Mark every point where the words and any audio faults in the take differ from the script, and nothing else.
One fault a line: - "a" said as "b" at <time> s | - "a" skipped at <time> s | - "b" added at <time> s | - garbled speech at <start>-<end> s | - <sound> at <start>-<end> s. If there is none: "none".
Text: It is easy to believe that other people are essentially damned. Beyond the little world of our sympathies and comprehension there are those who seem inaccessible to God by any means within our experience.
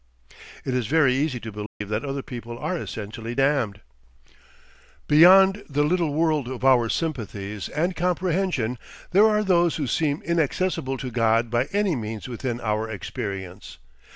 - "very" added at 0.9 s
- dropout at 1.7-1.8 s